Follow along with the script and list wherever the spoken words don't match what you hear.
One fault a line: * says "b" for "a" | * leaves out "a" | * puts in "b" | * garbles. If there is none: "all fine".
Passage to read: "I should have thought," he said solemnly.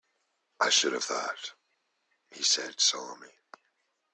all fine